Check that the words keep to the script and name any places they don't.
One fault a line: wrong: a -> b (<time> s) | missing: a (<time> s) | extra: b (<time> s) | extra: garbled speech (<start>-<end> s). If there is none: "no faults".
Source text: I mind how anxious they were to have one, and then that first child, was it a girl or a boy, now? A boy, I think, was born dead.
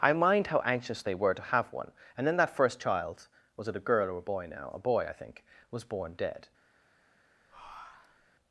no faults